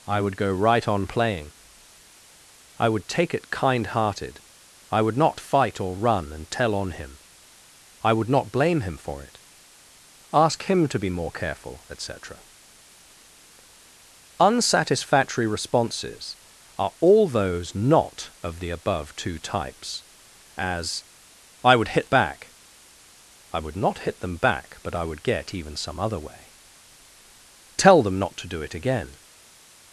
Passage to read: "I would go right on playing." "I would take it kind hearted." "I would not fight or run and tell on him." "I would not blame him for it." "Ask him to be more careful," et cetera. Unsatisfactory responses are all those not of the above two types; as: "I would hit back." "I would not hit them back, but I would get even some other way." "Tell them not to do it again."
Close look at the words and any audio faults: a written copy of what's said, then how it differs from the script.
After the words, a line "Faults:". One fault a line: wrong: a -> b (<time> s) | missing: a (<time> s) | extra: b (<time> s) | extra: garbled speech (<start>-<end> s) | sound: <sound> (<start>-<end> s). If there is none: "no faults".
"I would go right on playing." "I would take it kind hearted." "I would not fight or run and tell on him." "I would not blame him for it." "Ask him to be more careful," et cetera. Unsatisfactory responses are all those not of the above two types; as: "I would hit back." "I would not hit them back, but I would get even some other way." "Tell them not to do it again."
Faults:
no faults